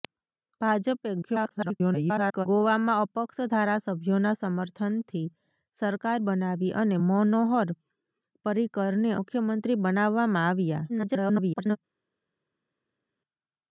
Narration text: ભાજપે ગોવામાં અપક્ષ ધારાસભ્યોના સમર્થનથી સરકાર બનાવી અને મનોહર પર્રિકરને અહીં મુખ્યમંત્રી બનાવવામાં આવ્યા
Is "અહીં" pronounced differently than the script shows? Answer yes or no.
yes